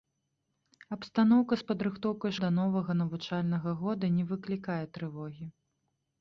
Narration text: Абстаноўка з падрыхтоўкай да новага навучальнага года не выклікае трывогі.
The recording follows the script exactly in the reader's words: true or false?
true